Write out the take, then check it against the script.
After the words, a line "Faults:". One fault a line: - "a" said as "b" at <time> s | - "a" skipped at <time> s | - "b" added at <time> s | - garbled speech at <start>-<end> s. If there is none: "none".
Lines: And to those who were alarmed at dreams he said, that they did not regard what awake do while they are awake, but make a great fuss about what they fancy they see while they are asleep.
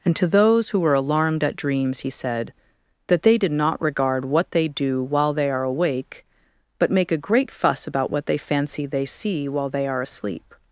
And to those who were alarmed at dreams he said, that they did not regard what they do while they are awake, but make a great fuss about what they fancy they see while they are asleep.
Faults:
- "awake" said as "they" at 4.5 s